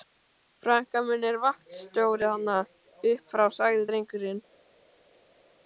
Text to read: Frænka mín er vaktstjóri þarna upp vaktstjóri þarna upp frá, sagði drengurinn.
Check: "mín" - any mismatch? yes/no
no